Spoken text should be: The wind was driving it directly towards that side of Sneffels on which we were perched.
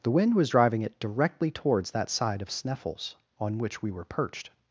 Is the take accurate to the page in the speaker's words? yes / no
yes